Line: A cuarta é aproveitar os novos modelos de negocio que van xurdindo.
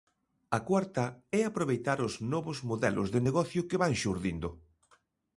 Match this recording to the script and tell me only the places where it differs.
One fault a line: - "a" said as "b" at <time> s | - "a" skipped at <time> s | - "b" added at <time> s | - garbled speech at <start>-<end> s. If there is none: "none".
none